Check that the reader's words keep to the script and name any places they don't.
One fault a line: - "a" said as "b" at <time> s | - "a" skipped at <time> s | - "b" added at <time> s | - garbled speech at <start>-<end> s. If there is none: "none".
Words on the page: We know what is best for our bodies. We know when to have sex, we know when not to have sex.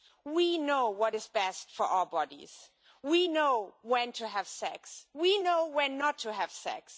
none